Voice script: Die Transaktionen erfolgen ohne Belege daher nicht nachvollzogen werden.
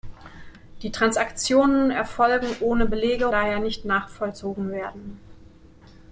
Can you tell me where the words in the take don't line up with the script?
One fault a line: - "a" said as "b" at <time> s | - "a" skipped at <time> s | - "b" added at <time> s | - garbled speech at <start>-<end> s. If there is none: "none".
none